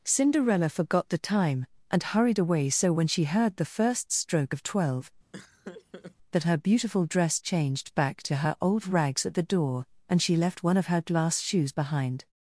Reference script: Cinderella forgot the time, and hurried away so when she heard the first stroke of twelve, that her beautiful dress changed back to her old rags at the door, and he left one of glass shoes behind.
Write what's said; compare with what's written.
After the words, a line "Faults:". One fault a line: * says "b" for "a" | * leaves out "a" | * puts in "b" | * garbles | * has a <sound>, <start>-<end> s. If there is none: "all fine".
Cinderella forgot the time, and hurried away so when she heard the first stroke of twelve, that her beautiful dress changed back to her old rags at the door, and she left one of her glass shoes behind.
Faults:
* has a laugh, 5.3-6.2 s
* says "she" for "he"
* puts in "her"